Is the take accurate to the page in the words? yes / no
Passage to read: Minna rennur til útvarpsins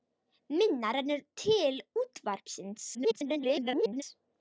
no